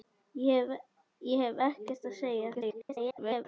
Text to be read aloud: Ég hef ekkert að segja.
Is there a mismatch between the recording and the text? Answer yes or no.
yes